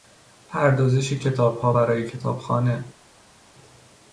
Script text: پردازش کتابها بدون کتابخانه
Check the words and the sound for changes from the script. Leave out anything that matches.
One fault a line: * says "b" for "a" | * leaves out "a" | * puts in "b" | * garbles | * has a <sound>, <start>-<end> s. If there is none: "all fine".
* says "برای" for "بدون"